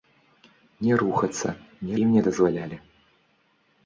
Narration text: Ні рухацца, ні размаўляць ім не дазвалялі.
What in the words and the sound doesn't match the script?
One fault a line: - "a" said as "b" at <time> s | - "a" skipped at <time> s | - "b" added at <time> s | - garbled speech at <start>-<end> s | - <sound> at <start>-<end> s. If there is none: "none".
- "размаўляць" skipped at 1.9 s